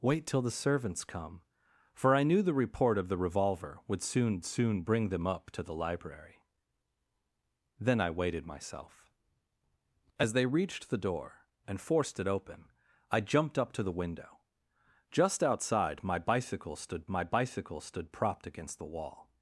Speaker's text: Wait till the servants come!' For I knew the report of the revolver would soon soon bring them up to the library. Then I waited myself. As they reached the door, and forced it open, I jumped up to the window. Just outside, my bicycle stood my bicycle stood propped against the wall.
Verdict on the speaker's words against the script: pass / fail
pass